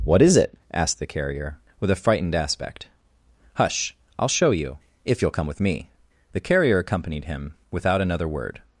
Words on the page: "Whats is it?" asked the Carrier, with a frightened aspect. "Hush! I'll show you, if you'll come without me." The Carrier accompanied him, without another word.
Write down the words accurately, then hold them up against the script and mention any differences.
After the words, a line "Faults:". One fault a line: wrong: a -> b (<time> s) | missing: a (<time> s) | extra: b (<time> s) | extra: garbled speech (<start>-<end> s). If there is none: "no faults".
"What is it?" asked the Carrier, with a frightened aspect. "Hush! I'll show you, if you'll come with me." The Carrier accompanied him, without another word.
Faults:
wrong: Whats -> What (0.0 s)
wrong: without -> with (5.5 s)